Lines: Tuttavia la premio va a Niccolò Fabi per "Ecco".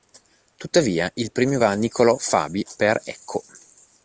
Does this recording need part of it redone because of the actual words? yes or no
yes